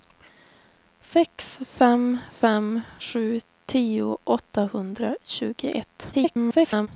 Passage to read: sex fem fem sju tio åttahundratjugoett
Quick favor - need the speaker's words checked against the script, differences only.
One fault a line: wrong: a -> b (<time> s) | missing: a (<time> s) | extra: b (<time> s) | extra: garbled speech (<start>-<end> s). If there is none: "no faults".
extra: garbled speech (6.1-6.9 s)